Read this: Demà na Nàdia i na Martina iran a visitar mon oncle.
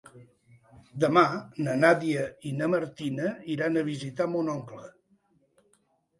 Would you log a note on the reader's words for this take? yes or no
no